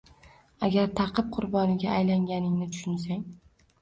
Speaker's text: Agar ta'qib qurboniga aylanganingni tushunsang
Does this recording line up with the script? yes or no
yes